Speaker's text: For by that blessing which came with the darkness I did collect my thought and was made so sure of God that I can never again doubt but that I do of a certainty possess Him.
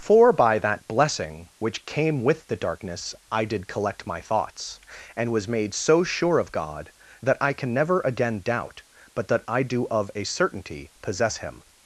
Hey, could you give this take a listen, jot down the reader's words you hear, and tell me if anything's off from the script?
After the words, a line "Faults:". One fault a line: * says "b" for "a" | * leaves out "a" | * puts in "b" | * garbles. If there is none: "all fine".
For by that blessing which came with the darkness I did collect my thoughts and was made so sure of God that I can never again doubt but that I do of a certainty possess Him.
Faults:
* says "thoughts" for "thought"